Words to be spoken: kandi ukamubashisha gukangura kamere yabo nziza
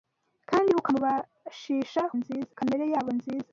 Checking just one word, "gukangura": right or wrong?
wrong